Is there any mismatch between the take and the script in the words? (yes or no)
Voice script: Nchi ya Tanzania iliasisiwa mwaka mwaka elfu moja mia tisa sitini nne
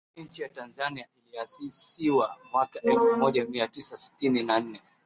yes